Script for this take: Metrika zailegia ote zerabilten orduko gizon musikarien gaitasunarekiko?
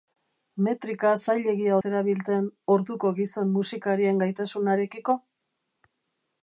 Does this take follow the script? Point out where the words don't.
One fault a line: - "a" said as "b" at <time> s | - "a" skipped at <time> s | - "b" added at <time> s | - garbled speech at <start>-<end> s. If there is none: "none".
- "ote" skipped at 1.8 s